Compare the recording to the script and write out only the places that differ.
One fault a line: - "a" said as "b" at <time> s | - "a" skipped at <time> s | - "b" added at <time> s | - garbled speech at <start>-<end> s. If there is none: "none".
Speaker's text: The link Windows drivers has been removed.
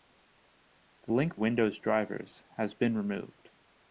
none